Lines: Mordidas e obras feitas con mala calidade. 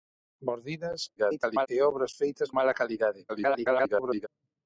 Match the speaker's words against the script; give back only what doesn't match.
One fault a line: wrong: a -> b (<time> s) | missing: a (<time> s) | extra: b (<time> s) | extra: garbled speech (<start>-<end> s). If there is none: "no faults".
extra: garbled speech (1.2-1.7 s)
missing: con (2.5 s)
extra: garbled speech (3.3-4.3 s)